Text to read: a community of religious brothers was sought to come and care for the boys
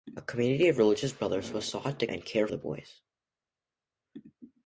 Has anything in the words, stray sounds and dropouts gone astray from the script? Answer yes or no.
yes